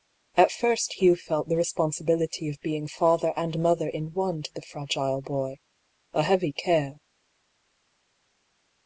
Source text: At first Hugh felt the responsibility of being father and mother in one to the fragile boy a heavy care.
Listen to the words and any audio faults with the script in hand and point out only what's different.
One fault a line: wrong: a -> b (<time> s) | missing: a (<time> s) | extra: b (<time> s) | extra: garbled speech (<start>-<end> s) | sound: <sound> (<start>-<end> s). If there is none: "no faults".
no faults